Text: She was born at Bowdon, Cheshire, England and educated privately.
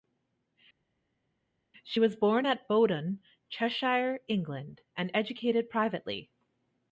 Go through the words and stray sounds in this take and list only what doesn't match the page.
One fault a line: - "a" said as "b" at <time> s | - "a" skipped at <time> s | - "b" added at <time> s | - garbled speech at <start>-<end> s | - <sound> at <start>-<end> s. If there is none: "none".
none